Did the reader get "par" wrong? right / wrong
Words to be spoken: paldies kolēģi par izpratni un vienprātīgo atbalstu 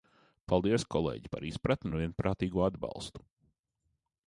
right